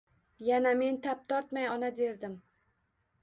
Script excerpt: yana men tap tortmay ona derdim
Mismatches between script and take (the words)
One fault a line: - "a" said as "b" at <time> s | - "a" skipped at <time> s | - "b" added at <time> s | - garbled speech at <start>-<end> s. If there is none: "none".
none